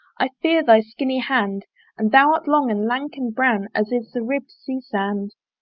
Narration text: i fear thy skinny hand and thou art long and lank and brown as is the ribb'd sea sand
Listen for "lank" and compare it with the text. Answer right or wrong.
right